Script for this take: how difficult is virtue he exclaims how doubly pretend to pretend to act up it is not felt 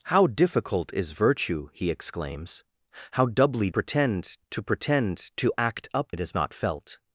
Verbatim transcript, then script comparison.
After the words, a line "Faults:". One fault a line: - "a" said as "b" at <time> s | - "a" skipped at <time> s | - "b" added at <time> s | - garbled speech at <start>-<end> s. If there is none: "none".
how difficult is virtue he exclaims how doubly pretend to pretend to act up it is not felt
Faults:
none